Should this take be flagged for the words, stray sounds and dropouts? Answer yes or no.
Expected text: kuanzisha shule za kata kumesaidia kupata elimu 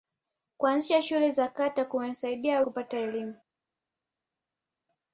no